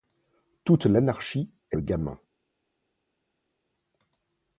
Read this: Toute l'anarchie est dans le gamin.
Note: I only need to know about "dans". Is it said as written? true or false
false